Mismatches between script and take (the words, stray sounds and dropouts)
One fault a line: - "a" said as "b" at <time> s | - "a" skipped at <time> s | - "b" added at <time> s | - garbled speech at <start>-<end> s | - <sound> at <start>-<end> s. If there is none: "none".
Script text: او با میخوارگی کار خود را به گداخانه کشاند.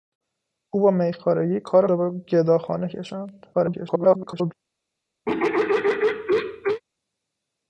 - "خود" skipped at 1.9 s
- garbled speech at 3.5-4.5 s
- throat clearing at 5.3-6.8 s